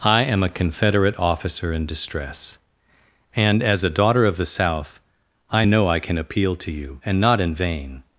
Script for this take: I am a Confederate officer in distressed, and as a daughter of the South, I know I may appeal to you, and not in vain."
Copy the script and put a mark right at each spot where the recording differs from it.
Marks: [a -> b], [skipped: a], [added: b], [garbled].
I am a Confederate officer in [distressed, -> distress] and as a daughter of the South, I know I [may -> can] appeal to you, and not in vain."